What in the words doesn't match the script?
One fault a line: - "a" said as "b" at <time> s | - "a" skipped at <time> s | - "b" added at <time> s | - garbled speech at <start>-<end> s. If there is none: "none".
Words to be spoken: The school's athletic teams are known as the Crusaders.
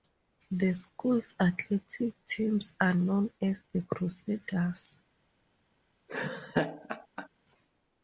none